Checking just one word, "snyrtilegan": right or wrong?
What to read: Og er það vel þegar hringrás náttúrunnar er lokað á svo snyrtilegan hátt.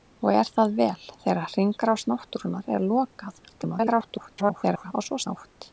wrong